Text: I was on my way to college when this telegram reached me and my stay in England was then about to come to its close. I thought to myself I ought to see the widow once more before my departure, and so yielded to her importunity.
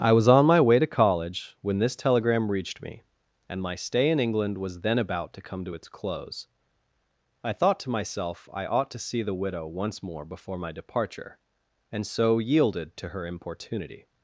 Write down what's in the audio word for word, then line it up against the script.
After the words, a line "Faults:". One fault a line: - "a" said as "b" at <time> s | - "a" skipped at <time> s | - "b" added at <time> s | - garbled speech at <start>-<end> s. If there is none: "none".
I was on my way to college when this telegram reached me and my stay in England was then about to come to its close. I thought to myself I ought to see the widow once more before my departure, and so yielded to her importunity.
Faults:
none